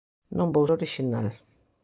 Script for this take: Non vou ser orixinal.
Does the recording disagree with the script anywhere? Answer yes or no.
yes